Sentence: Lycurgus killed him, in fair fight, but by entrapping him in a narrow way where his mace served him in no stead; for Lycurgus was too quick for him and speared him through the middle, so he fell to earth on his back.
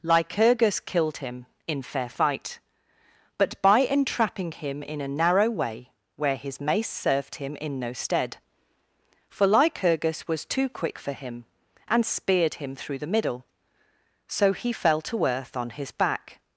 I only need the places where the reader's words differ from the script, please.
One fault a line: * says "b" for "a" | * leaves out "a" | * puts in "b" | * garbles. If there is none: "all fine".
all fine